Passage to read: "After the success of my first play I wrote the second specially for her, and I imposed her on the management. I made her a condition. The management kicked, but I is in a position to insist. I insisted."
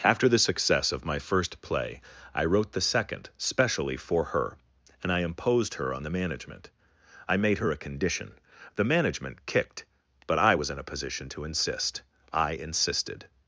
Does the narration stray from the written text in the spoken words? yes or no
yes